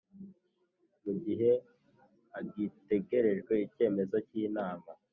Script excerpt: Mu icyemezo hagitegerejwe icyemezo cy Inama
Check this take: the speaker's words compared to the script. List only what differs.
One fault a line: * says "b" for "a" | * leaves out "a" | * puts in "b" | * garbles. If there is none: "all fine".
* says "gihe" for "icyemezo"